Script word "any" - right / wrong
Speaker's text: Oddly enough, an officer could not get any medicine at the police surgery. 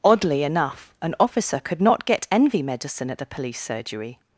wrong